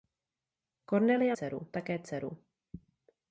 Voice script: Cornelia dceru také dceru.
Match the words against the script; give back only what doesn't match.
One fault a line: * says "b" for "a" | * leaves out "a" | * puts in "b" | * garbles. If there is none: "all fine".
all fine